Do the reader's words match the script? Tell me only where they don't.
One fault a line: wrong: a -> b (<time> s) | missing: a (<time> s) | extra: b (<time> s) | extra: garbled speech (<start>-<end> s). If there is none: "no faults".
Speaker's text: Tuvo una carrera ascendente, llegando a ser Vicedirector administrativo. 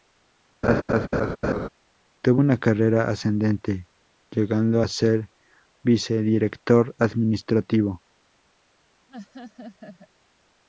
no faults